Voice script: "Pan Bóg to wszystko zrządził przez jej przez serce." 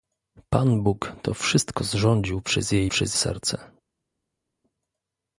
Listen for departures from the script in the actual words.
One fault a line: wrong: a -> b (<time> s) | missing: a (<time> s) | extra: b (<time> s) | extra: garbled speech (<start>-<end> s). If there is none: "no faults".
no faults